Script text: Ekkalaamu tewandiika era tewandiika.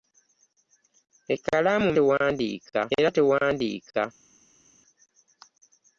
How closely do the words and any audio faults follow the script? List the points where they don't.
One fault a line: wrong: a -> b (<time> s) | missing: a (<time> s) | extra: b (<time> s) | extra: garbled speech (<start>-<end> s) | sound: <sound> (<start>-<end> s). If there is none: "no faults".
no faults